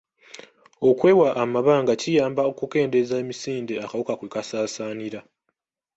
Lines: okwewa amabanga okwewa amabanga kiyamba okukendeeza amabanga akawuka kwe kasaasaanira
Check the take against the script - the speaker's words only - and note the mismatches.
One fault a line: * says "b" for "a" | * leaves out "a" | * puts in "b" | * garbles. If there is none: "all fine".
* leaves out "okwewa amabanga"
* says "emisinde" for "amabanga"